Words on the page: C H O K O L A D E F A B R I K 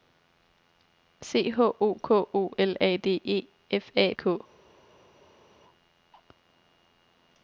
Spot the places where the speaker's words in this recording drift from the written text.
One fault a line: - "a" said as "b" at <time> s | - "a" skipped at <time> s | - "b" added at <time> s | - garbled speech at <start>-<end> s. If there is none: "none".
- "B R I" skipped at 4.1 s